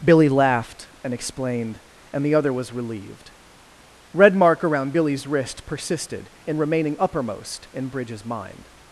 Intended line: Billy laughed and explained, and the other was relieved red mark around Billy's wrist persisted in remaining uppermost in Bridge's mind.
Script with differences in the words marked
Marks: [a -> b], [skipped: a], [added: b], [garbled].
Billy laughed and explained, and the other was relieved red mark around Billy's wrist persisted in remaining uppermost in Bridge's mind.